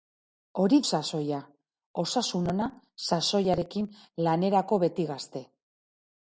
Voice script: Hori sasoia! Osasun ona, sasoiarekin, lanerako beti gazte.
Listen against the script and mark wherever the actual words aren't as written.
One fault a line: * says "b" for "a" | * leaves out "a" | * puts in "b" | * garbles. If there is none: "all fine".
all fine